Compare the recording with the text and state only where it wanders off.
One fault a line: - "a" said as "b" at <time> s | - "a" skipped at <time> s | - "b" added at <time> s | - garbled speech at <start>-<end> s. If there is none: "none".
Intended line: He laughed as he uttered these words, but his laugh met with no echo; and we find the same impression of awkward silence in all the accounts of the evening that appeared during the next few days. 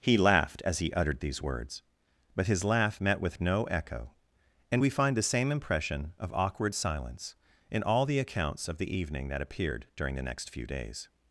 none